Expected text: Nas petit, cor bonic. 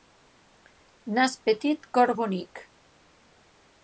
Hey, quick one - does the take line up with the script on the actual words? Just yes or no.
yes